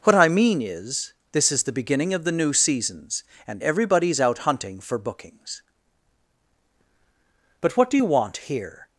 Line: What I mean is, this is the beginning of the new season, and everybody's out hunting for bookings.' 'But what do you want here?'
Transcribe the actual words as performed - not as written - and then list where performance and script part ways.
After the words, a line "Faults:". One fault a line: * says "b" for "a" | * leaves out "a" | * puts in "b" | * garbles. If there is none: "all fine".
What I mean is, this is the beginning of the new seasons, and everybody's out hunting for bookings.' 'But what do you want here?'
Faults:
* says "seasons" for "season"